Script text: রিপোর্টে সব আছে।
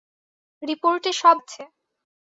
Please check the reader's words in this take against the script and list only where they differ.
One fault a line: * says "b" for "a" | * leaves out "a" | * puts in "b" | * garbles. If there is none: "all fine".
all fine